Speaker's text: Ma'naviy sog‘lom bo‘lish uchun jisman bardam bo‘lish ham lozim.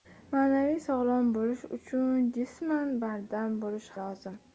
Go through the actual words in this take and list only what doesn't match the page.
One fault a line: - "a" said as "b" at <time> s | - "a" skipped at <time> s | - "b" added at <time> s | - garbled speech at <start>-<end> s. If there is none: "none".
- "ham" skipped at 3.9 s